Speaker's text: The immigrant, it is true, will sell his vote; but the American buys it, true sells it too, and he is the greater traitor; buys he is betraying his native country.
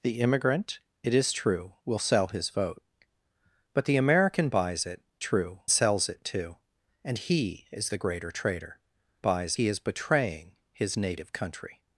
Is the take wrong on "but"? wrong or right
right